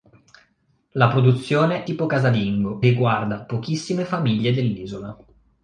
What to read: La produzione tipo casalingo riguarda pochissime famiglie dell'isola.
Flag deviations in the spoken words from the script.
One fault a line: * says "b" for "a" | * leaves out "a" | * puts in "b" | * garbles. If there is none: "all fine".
all fine